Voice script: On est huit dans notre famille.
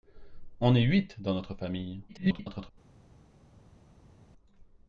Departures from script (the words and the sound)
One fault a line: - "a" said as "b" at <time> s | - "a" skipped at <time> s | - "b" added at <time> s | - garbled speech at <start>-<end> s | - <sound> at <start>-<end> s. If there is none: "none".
- garbled speech at 2.1-2.7 s